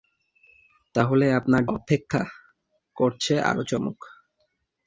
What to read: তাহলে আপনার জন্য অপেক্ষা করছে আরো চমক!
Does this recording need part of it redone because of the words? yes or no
yes